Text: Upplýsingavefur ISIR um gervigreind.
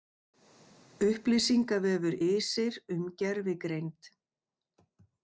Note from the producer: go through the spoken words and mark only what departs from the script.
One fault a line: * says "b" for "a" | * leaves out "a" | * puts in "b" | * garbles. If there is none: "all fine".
all fine